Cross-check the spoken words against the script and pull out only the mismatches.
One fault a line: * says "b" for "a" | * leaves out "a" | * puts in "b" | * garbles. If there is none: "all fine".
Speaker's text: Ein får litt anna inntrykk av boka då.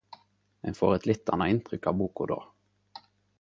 * puts in "eit"